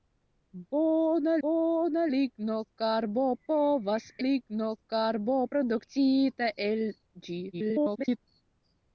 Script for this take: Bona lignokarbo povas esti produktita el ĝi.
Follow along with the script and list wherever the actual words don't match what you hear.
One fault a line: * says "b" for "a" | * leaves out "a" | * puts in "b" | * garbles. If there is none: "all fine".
* puts in "bona"
* says "lignokarbo" for "esti"
* garbles